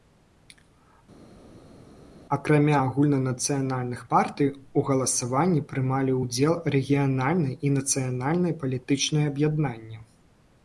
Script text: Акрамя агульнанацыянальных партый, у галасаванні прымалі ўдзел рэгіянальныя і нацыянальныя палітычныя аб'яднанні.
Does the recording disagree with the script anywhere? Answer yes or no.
no